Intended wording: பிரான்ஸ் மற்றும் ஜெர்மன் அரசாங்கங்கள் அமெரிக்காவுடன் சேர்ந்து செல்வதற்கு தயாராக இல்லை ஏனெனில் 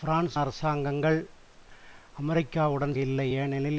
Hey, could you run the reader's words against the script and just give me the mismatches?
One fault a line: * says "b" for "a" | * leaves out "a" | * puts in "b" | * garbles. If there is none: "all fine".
* leaves out "மற்றும் ஜெர்மன்"
* leaves out "சேர்ந்து செல்வதற்கு தயாராக"